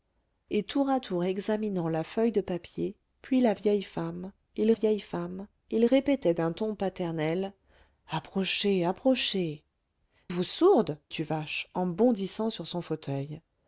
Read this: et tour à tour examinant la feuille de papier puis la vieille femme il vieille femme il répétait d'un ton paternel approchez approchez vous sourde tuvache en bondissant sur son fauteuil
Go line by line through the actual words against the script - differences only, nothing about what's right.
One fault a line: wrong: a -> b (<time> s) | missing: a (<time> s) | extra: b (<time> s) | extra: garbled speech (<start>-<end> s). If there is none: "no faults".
no faults